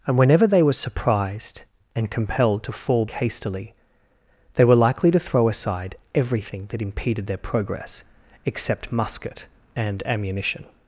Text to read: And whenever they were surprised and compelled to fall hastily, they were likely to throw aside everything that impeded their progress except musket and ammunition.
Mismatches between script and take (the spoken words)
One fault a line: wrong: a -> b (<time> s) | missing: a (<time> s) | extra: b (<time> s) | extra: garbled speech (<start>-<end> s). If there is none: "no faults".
no faults